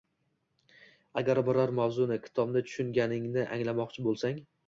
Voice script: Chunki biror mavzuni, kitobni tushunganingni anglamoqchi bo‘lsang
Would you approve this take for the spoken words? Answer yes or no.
no